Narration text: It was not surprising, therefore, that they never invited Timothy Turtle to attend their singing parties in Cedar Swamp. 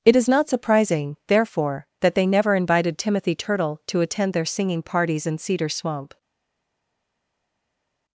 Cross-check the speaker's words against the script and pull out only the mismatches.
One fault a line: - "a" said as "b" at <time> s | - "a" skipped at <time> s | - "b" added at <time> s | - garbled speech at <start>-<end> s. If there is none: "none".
- "was" said as "is" at 0.1 s